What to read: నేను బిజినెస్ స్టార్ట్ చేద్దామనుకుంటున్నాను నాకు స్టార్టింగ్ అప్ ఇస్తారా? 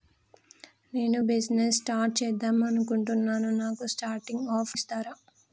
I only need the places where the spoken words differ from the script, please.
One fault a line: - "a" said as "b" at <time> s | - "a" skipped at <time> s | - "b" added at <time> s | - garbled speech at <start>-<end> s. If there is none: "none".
none